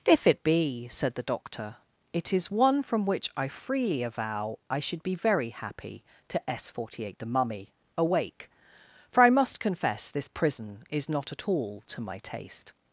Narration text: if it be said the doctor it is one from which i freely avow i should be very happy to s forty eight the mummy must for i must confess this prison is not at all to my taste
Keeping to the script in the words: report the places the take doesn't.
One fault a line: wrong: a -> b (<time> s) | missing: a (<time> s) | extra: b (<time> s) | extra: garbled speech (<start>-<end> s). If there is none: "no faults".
wrong: must -> awake (8.0 s)